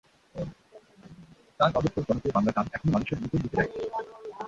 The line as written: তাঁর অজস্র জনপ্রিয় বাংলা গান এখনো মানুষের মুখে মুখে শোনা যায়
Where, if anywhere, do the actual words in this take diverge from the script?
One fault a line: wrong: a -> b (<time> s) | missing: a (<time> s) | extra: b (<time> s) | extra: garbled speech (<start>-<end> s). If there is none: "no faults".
missing: শোনা (3.6 s)